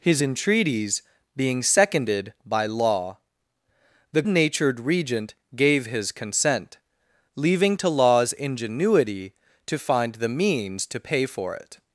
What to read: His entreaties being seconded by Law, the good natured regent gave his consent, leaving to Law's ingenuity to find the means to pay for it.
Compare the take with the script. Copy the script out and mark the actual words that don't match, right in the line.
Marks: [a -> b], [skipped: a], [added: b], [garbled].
His entreaties being seconded by Law, the [skipped: good] natured regent gave his consent, leaving to Law's ingenuity to find the means to pay for it.